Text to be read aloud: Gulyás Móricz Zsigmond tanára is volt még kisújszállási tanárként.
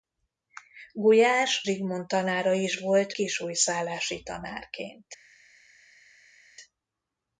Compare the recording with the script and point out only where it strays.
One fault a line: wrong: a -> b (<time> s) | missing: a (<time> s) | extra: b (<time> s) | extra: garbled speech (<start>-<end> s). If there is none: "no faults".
missing: Móricz (1.6 s)
missing: még (3.1 s)